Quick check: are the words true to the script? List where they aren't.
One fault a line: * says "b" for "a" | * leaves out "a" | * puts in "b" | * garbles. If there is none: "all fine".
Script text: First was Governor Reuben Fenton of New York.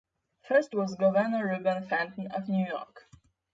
all fine